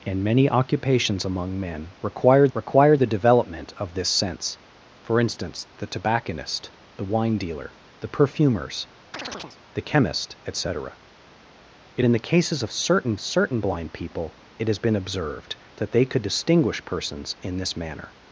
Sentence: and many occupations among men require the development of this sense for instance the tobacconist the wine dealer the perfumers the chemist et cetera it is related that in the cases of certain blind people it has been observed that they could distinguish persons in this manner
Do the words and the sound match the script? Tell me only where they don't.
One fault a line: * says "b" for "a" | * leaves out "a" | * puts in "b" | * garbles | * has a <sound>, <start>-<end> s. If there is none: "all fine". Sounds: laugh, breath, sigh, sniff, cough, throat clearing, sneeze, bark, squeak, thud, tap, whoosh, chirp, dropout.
* puts in "require"
* has a chirp, 9.1-9.6 s
* leaves out "is related that"
* puts in "certain"